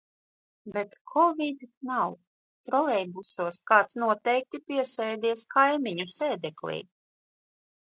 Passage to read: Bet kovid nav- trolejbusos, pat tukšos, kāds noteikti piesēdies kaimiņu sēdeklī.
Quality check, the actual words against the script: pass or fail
fail